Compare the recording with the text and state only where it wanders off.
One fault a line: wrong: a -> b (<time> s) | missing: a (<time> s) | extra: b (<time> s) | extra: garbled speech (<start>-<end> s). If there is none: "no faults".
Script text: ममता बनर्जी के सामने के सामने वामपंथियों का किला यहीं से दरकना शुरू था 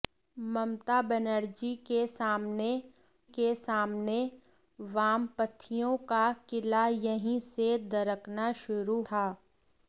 no faults